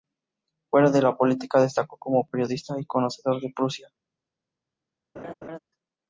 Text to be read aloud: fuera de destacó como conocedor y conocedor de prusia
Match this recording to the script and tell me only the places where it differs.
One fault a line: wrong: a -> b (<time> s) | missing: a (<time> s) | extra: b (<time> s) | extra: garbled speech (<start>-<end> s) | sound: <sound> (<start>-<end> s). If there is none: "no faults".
extra: la política (1.0 s)
wrong: conocedor -> periodista (2.2 s)
sound: laugh (5.2-5.6 s)